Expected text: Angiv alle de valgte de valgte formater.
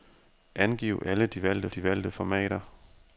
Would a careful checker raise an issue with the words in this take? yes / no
no